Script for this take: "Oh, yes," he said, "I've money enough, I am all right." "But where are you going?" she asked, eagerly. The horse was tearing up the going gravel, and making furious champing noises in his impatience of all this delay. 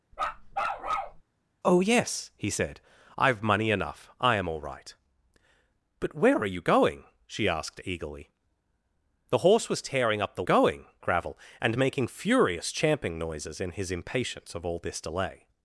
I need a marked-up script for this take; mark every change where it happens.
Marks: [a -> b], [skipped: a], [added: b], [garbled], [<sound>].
[bark] "Oh, yes," he said, "I've money enough, I am all right." "But where are you going?" she asked, eagerly. The horse was tearing up the going gravel, and making furious champing noises in his impatience of all this delay.